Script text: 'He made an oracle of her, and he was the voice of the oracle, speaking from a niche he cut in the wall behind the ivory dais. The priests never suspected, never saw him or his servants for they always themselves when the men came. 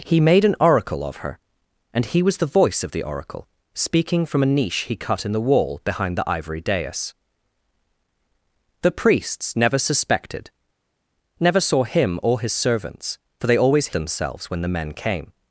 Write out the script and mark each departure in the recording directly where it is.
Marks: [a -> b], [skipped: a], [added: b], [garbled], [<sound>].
'He made an oracle of her, and he was the voice of the oracle, speaking from a niche he cut in the wall behind the ivory dais. The priests never suspected, never saw him or his servants for they always themselves when the men came.